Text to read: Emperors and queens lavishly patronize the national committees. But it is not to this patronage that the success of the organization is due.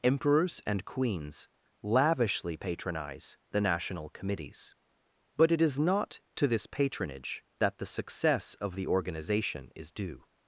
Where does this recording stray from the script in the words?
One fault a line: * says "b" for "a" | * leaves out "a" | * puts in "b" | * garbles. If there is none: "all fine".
all fine